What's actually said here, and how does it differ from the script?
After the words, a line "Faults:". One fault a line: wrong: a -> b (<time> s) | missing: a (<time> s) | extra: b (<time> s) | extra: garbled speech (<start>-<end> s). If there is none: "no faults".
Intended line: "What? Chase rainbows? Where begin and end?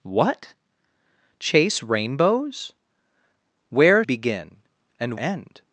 "What? Chase rainbows? Where begin and end?
Faults:
no faults